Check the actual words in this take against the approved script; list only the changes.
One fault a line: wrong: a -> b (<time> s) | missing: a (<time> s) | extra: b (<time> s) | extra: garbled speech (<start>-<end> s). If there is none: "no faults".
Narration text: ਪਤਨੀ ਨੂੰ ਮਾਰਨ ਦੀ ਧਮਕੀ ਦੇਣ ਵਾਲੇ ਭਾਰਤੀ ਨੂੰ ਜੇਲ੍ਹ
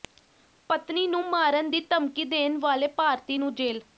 no faults